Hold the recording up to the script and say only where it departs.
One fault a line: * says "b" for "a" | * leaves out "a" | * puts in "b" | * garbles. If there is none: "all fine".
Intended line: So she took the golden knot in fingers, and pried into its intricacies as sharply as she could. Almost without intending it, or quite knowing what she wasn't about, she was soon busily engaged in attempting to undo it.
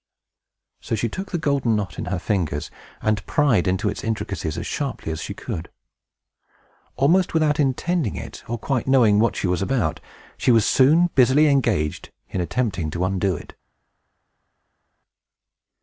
* puts in "her"
* says "was" for "wasn't"